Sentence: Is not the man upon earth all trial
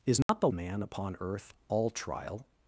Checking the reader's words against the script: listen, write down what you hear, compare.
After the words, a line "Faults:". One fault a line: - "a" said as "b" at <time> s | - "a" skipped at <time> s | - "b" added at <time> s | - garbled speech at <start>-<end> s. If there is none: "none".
Is not the man upon earth all trial
Faults:
none